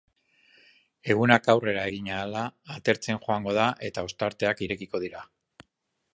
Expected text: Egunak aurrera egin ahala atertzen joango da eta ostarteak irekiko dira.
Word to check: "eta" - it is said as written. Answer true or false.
true